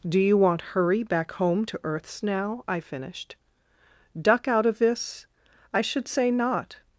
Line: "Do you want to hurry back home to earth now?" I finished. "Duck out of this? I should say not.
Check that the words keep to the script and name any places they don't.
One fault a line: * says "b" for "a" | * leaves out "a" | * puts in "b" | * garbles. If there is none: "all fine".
* leaves out "to"
* says "earths" for "earth"